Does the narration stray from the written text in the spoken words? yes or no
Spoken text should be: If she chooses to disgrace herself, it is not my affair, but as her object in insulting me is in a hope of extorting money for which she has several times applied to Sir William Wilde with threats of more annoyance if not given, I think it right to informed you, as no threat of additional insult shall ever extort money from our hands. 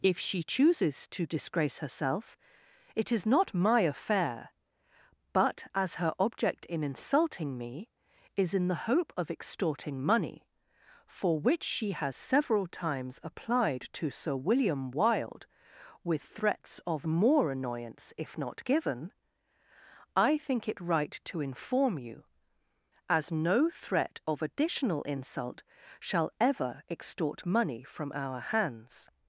yes